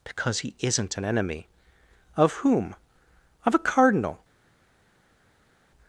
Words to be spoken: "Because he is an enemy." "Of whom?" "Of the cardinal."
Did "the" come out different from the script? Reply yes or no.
yes